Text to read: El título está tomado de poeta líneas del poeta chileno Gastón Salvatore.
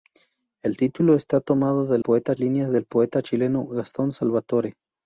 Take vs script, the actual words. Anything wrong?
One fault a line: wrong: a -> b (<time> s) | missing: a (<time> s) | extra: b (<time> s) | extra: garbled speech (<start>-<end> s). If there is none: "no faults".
no faults